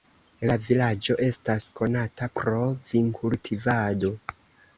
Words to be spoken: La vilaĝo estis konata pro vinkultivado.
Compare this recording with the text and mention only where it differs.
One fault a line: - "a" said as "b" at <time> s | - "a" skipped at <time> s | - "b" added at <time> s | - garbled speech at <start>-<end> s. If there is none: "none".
- "estis" said as "estas" at 1.2 s